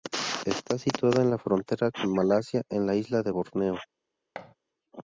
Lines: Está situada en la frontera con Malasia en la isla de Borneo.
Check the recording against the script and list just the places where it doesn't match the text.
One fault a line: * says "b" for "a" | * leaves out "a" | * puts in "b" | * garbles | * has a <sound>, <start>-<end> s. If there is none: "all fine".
* has a thud, 4.4-4.6 s